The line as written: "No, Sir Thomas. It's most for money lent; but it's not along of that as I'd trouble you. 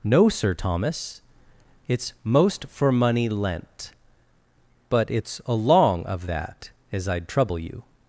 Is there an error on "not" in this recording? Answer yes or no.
yes